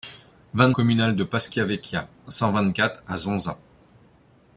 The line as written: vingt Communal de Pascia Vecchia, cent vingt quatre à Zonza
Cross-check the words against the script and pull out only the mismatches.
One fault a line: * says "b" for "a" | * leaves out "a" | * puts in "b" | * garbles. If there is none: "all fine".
all fine